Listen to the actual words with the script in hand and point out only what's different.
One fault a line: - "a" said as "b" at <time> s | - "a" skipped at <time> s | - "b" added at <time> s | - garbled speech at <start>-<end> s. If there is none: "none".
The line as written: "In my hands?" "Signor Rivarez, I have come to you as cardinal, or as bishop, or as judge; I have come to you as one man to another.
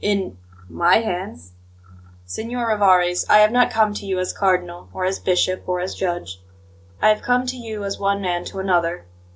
- "not" added at 3.5 s